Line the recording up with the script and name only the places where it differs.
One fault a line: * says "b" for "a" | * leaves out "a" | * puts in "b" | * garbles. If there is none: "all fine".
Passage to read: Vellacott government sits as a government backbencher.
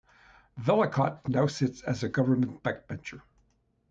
* says "now" for "government"